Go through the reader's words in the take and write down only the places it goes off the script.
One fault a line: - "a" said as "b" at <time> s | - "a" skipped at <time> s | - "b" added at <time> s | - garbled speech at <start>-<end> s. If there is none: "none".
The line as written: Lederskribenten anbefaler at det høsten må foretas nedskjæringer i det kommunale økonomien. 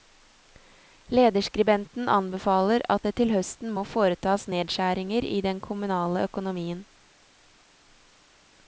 - "til" added at 3.2 s
- "det" said as "den" at 5.5 s